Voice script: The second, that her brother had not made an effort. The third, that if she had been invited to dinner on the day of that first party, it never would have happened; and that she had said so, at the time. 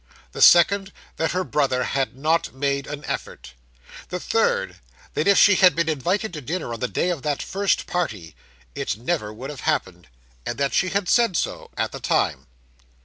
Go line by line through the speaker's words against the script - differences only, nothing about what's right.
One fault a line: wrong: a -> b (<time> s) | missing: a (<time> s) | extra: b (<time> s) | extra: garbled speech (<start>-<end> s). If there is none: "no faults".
no faults